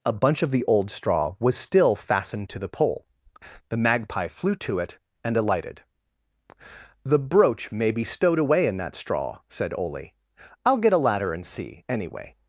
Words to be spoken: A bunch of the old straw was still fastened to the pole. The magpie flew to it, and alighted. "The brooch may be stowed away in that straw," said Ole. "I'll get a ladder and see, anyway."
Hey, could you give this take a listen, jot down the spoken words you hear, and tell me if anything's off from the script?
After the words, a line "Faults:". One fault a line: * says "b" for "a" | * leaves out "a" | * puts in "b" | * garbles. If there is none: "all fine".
A bunch of the old straw was still fastened to the pole. The magpie flew to it, and alighted. "The brooch may be stowed away in that straw," said Ole. "I'll get a ladder and see, anyway."
Faults:
all fine